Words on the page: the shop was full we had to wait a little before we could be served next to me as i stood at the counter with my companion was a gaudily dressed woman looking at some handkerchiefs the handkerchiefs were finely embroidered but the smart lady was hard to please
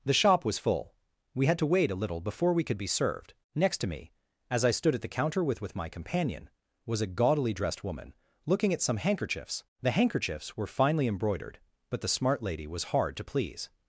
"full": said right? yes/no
yes